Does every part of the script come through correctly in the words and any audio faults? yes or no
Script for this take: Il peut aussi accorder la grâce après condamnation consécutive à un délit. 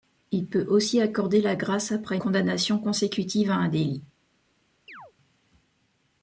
no